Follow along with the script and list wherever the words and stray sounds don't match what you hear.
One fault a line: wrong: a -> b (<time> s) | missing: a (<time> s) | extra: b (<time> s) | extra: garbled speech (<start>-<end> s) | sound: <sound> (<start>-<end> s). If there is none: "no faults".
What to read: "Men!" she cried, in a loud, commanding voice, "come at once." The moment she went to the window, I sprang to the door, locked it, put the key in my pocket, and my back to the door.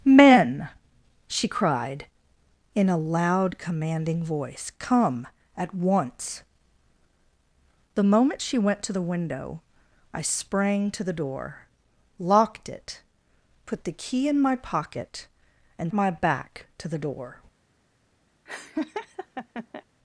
sound: laugh (18.5-19.8 s)